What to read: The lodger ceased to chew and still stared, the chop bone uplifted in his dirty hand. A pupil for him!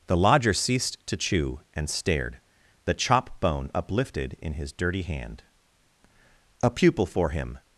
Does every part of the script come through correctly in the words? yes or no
no